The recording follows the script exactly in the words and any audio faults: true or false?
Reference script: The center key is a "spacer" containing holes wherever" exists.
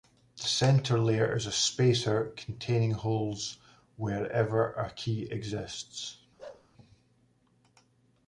false